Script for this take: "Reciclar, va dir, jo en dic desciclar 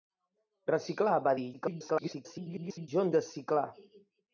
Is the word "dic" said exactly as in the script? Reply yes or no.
no